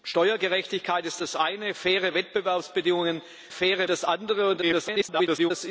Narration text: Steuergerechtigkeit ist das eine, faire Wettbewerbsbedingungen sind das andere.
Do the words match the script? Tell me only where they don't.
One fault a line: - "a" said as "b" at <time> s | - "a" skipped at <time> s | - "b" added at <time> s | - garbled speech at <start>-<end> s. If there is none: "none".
- "sind" said as "faire" at 3.5 s
- garbled speech at 4.6-5.5 s